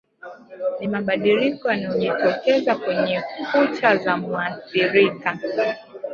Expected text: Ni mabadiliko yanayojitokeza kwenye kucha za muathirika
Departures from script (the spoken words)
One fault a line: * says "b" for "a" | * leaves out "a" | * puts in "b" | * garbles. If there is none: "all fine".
all fine